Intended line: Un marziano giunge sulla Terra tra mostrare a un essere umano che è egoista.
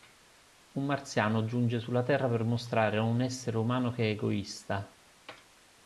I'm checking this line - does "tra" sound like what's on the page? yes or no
no